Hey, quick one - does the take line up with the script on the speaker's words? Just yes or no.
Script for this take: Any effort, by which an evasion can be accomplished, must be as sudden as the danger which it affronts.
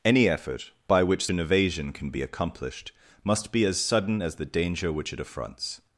yes